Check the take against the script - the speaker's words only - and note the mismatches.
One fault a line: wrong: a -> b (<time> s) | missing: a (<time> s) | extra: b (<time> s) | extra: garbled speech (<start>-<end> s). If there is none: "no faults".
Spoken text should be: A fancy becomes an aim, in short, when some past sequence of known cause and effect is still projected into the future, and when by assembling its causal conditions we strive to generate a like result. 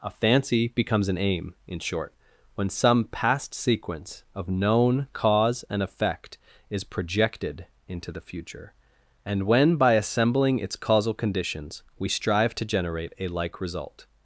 missing: still (6.8 s)